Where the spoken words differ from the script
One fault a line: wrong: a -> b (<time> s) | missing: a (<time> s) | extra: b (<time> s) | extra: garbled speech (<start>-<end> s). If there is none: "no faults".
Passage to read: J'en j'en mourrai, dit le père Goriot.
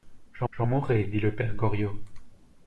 no faults